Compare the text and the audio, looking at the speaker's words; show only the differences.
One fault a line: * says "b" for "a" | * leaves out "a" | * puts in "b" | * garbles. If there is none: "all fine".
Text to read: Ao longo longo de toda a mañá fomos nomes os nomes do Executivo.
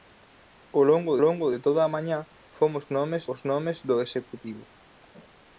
all fine